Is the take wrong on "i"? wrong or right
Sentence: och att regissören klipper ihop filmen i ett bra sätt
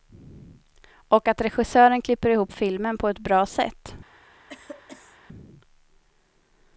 wrong